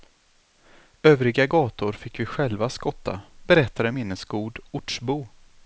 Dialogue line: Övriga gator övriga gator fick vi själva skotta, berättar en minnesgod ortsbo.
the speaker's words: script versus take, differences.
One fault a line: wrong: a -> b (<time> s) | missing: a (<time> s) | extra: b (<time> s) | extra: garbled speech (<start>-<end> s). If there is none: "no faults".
missing: övriga gator (1.9 s)